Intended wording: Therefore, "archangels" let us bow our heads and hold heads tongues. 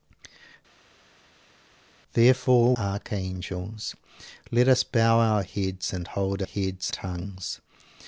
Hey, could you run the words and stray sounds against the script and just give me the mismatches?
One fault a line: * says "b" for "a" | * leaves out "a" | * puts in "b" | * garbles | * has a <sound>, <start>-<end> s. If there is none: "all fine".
all fine